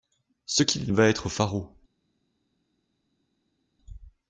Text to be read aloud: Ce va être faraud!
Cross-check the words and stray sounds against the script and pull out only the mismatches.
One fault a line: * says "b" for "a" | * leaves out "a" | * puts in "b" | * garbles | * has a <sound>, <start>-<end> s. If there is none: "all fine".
* puts in "qu'il"